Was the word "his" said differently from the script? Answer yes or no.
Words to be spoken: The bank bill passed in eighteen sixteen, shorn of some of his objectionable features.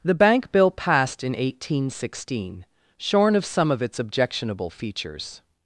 yes